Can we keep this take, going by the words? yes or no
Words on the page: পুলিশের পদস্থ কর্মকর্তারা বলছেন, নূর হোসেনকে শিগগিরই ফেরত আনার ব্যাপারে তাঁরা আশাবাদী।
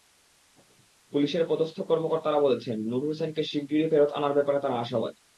yes